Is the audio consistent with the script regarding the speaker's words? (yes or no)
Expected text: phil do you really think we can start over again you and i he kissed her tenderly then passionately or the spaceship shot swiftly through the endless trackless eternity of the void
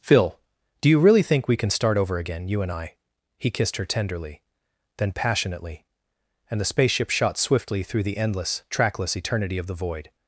no